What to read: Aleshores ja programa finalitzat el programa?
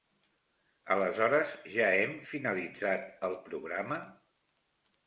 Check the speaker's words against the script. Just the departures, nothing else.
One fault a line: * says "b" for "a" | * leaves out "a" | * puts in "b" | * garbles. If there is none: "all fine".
* says "hem" for "programa"